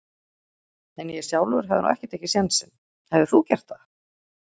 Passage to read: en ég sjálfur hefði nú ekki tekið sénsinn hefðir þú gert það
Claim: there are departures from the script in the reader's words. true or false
false